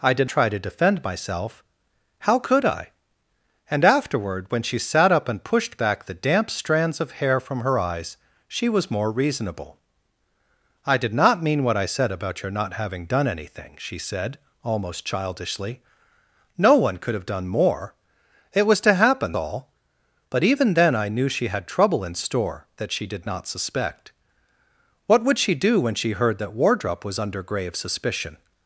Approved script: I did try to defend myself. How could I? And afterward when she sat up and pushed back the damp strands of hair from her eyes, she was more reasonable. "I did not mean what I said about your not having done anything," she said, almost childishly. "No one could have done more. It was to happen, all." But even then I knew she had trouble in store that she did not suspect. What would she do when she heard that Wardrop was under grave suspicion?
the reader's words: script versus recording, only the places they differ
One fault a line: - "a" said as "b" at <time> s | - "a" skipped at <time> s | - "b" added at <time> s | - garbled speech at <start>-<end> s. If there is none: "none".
none